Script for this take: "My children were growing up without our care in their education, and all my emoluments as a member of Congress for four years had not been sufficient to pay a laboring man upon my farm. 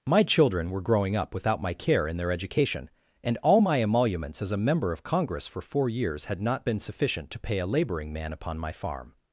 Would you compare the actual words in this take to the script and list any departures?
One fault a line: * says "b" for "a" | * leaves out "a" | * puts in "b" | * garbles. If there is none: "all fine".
* says "my" for "our"